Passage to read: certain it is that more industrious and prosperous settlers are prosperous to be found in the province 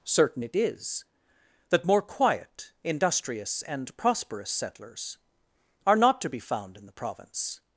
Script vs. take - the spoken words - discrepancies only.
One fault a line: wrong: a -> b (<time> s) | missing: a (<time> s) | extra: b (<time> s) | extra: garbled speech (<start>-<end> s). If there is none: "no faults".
extra: quiet (2.0 s)
wrong: prosperous -> not (6.0 s)